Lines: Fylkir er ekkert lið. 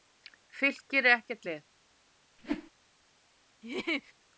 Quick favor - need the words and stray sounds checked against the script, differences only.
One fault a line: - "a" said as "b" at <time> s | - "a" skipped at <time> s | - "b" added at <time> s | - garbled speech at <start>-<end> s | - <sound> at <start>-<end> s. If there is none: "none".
- whoosh at 2.4-2.7 s
- laugh at 3.6-4.1 s